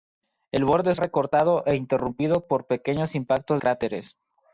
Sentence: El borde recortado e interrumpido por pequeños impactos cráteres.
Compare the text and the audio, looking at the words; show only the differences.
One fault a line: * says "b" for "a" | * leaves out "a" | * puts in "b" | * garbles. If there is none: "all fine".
all fine